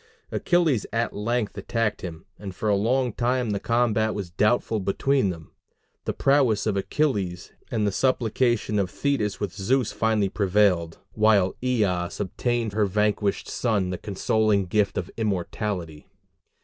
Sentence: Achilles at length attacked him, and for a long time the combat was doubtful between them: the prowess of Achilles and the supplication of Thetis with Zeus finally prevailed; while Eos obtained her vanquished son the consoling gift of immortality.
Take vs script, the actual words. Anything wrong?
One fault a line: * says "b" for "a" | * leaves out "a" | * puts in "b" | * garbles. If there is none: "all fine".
all fine